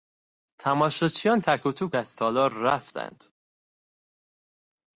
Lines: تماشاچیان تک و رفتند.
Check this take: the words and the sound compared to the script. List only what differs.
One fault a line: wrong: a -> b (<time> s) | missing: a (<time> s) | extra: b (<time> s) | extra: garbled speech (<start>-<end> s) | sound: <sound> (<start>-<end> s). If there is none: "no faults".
extra: توک از تالار (1.7 s)